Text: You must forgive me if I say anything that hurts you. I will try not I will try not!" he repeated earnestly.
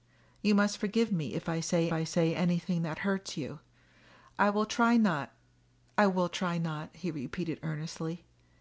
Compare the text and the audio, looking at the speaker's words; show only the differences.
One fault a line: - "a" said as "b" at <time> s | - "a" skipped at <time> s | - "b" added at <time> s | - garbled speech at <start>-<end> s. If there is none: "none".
- "I say" added at 1.9 s